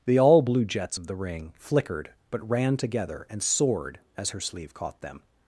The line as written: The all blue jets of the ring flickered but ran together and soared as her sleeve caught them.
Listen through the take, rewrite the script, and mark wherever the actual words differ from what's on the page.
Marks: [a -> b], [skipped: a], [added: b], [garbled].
The all blue jets of the ring flickered but ran together and soared as her sleeve caught them.